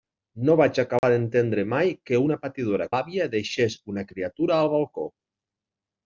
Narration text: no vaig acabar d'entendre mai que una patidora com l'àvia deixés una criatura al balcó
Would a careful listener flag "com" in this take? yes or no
yes